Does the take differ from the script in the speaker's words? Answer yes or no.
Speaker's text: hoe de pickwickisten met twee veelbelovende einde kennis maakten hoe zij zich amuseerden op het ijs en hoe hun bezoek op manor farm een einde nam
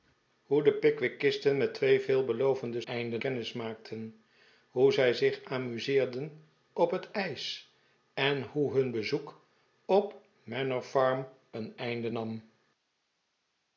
no